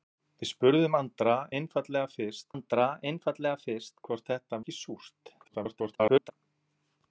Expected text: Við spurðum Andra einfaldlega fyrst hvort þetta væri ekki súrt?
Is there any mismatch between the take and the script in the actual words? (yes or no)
yes